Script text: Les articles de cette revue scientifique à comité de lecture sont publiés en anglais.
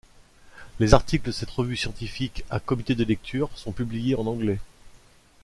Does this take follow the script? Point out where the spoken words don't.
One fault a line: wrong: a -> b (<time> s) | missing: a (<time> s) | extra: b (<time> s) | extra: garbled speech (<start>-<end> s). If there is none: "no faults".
no faults